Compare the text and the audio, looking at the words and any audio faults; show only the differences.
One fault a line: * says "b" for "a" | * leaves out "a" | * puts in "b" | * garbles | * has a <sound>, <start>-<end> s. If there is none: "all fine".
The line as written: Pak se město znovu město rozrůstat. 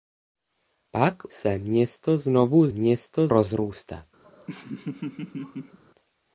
* has a laugh, 4.2-5.8 s